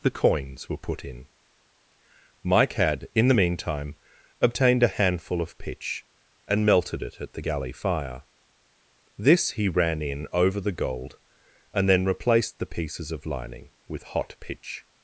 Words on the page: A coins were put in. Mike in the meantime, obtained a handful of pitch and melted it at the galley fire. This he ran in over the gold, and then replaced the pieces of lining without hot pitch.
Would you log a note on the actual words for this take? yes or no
yes